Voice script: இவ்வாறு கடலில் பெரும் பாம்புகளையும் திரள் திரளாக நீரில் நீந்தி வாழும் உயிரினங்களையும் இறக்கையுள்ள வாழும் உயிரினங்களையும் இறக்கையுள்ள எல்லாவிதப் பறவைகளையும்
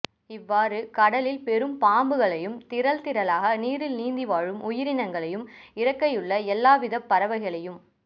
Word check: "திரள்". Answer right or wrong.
right